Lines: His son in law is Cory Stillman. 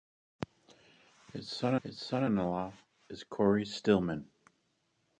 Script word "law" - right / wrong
right